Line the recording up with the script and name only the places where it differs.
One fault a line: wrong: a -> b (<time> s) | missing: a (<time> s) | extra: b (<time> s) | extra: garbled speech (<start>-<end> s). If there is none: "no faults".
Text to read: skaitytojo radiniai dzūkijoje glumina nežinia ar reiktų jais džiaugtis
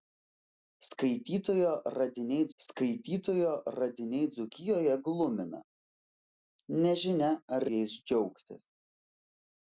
extra: skaitytojo radiniai (2.6 s)
missing: reiktų (7.7 s)